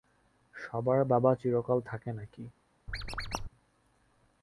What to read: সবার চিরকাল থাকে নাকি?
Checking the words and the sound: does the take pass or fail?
fail